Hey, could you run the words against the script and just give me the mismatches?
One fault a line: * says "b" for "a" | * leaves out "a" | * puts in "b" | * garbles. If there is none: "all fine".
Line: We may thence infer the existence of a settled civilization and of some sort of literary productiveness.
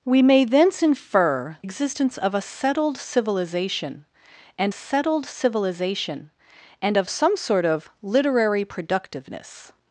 * leaves out "the"
* puts in "settled civilization and"